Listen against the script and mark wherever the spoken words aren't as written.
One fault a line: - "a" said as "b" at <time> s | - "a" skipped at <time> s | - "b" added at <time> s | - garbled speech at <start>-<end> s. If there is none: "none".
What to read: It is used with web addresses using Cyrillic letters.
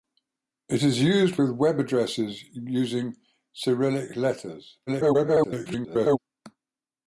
- garbled speech at 4.9-6.2 s